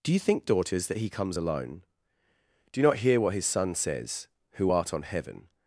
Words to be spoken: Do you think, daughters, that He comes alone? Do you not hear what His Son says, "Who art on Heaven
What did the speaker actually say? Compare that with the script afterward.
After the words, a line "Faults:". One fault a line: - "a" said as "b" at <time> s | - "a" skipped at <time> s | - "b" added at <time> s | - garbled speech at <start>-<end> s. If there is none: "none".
Do you think, daughters, that He comes alone? Do you not hear what His Son says, "Who art on Heaven
Faults:
none